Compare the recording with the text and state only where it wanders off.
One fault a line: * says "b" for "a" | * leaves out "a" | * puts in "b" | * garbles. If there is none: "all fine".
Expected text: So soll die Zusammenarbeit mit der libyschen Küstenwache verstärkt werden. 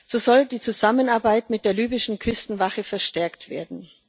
all fine